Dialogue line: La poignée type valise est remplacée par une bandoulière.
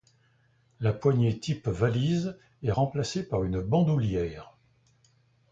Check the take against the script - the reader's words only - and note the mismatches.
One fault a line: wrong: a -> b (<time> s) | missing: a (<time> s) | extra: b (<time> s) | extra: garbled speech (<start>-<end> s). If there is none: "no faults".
no faults